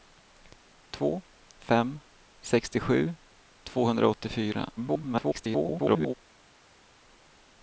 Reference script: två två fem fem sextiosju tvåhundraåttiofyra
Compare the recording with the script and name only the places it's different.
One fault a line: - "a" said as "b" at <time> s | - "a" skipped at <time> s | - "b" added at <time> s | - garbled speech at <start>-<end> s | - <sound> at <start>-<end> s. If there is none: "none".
- "två fem" skipped at 1.2 s
- garbled speech at 4.8-6.1 s